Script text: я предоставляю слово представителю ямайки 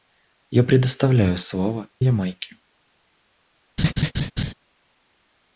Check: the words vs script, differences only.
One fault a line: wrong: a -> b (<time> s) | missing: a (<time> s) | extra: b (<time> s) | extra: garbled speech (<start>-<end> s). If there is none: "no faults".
missing: представителю (1.9 s)